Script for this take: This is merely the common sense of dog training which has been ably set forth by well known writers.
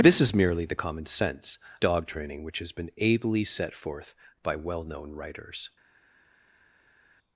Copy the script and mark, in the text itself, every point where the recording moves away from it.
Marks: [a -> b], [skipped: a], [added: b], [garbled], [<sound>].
This is merely the common sense [skipped: of] dog training which has been ably set forth by well known writers.